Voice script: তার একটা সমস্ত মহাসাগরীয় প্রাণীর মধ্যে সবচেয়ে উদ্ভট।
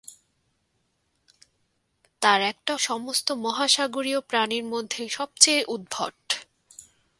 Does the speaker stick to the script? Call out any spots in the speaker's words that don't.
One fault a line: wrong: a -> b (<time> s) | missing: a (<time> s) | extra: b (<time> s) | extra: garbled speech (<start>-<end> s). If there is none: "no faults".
no faults